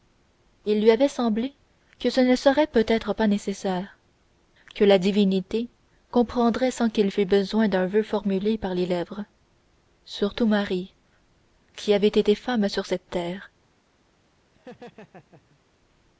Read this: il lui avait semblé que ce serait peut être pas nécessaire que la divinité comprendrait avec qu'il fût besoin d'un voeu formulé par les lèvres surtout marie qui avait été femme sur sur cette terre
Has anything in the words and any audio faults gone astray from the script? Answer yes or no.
yes